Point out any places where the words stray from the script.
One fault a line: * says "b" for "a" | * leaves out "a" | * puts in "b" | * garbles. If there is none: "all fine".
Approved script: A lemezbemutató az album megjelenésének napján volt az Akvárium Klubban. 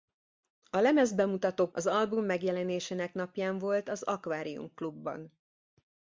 all fine